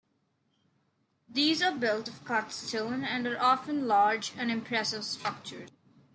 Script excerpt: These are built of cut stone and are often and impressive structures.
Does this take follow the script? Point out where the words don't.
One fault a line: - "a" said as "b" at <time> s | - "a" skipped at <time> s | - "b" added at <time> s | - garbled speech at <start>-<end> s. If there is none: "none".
- "large" added at 3.9 s